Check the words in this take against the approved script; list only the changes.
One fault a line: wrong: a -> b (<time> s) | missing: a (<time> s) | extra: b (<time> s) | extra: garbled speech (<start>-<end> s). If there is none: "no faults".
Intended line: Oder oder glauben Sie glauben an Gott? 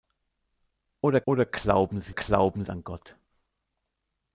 no faults